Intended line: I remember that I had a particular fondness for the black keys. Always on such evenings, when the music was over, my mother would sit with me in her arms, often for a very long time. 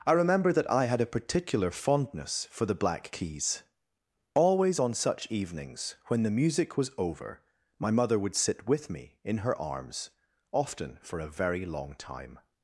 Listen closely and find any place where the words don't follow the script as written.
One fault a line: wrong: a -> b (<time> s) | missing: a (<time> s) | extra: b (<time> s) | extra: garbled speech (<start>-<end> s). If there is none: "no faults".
no faults